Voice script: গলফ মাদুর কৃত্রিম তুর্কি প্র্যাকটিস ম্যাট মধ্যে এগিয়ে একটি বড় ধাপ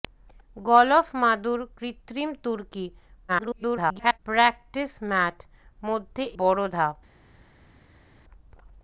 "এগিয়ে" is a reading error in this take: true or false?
true